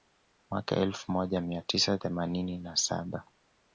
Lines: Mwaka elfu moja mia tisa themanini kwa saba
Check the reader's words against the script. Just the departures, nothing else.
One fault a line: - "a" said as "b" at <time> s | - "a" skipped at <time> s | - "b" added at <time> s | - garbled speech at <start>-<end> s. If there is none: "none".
- "kwa" said as "na" at 2.6 s